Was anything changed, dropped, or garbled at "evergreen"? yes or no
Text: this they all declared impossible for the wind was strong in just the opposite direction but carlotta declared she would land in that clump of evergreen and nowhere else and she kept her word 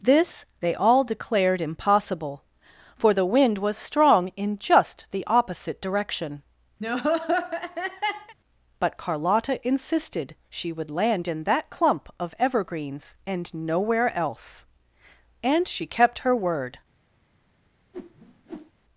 yes